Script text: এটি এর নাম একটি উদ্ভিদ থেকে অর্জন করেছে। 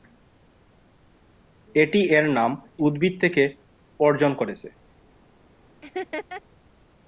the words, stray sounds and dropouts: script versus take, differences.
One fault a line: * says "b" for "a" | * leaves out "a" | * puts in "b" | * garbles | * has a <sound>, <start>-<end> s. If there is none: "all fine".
* leaves out "একটি"
* has a laugh, 5.8-6.4 s